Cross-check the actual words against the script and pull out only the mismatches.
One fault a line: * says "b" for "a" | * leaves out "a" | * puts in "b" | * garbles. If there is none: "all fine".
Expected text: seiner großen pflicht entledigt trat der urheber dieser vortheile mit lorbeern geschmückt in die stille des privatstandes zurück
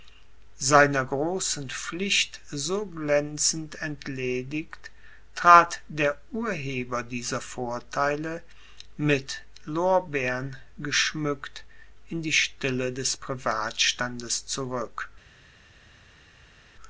* puts in "so glänzend"